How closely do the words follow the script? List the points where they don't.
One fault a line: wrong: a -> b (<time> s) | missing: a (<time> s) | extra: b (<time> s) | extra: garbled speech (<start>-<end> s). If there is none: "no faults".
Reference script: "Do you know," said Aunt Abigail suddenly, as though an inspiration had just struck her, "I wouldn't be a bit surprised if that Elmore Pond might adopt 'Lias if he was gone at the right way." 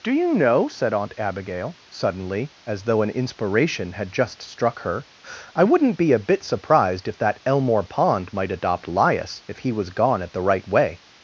no faults